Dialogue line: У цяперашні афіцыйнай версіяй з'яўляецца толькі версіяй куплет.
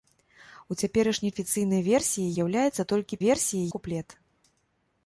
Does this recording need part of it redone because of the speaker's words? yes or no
no